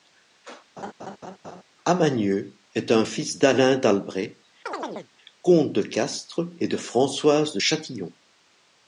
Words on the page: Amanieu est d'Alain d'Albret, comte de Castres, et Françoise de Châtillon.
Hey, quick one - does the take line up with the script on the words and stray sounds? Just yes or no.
no